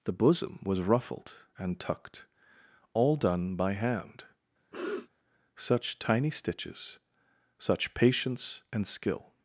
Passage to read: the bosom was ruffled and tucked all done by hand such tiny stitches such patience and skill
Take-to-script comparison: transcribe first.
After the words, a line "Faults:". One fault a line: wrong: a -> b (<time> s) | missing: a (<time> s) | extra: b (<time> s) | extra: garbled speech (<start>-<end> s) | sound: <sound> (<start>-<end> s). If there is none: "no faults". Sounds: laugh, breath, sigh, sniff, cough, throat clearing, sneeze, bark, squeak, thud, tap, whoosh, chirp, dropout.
the bosom was ruffled and tucked all done by hand such tiny stitches such patience and skill
Faults:
sound: sniff (4.7-5.1 s)